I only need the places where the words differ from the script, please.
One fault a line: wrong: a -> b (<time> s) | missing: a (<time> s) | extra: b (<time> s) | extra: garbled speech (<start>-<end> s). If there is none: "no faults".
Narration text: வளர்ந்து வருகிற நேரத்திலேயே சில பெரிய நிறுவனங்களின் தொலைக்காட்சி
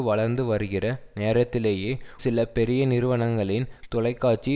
no faults